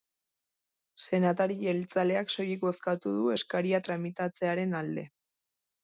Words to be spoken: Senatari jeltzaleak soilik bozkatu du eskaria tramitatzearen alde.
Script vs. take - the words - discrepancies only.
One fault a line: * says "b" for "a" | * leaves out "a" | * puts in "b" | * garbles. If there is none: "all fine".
all fine